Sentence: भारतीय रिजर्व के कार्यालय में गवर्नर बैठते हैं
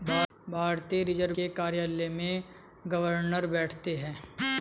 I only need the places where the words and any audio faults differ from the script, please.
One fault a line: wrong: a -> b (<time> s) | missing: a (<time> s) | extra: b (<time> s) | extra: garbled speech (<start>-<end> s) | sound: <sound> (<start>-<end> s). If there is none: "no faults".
no faults